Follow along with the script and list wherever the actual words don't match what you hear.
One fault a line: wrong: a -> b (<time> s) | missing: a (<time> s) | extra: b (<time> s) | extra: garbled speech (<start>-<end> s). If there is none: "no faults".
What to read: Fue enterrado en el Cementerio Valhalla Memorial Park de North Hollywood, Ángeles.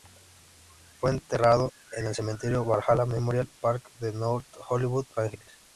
no faults